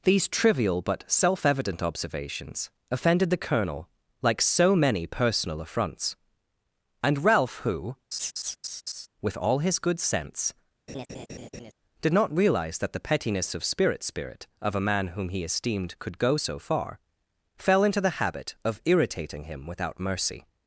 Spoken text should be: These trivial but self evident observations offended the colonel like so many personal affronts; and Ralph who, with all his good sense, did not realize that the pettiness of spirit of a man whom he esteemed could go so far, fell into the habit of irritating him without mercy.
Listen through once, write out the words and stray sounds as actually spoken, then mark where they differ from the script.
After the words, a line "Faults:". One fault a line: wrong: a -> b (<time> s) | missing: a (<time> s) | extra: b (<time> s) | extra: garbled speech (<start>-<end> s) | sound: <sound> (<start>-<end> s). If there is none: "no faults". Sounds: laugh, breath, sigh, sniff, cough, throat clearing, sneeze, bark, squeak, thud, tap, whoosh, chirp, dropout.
These trivial but self evident observations offended the colonel like so many personal affronts; and Ralph who, with all his good sense, did not realize that the pettiness of spirit spirit of a man whom he esteemed could go so far, fell into the habit of irritating him without mercy.
Faults:
sound: laugh (8.1-9.1 s)
sound: laugh (10.9-11.7 s)
extra: spirit (14.0 s)